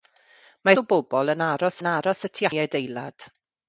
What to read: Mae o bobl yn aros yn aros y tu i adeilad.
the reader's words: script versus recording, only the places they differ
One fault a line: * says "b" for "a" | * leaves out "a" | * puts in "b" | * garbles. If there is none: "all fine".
all fine